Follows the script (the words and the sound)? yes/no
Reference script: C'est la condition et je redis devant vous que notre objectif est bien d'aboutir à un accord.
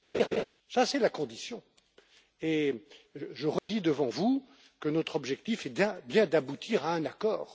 no